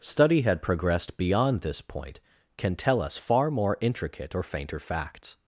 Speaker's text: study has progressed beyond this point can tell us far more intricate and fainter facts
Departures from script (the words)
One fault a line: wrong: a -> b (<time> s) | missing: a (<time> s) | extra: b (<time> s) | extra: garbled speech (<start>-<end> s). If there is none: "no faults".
wrong: has -> had (0.4 s)
wrong: and -> or (4.3 s)